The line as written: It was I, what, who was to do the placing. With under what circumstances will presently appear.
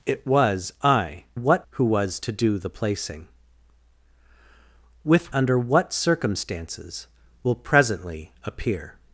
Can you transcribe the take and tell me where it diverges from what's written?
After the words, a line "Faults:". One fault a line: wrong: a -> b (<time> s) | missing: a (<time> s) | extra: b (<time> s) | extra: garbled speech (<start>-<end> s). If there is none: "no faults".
It was I, what, who was to do the placing. With under what circumstances will presently appear.
Faults:
no faults